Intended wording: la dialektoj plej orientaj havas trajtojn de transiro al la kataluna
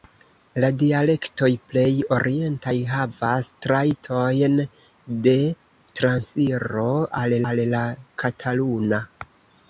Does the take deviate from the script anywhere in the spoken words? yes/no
yes